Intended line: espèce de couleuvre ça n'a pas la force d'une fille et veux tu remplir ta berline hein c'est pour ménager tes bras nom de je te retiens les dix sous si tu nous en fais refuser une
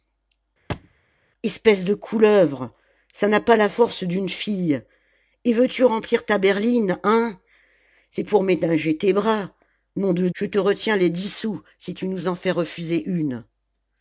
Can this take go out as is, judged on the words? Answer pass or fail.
pass